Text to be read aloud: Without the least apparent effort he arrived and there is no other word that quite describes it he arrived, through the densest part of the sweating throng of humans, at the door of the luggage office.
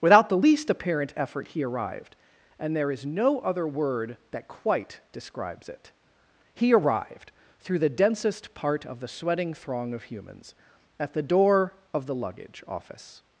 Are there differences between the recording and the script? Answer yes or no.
no